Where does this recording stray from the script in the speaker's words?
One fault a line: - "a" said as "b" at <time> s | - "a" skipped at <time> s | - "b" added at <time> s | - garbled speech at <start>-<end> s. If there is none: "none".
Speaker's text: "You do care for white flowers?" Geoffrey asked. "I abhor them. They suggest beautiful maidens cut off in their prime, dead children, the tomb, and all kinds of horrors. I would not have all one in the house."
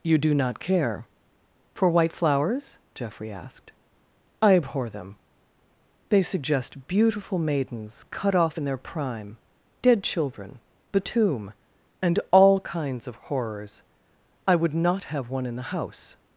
- "not" added at 0.3 s
- "all" skipped at 15.3 s